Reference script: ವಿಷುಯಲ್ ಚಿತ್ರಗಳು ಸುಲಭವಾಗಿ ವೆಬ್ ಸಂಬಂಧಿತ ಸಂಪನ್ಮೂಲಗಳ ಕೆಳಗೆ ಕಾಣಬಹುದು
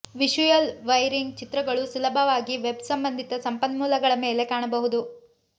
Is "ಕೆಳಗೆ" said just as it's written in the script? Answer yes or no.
no